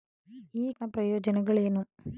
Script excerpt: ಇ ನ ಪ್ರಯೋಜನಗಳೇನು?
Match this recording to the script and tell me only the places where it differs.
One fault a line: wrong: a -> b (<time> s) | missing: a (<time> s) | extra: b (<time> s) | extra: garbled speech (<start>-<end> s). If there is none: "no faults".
no faults